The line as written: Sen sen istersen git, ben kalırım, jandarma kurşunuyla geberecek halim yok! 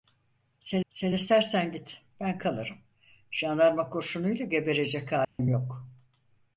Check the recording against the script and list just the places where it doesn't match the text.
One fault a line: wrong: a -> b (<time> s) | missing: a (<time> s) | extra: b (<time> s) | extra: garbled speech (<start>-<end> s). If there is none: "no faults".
no faults